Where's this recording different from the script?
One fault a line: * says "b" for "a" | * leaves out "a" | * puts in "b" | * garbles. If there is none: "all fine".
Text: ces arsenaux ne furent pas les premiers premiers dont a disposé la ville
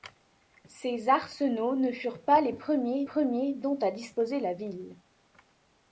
all fine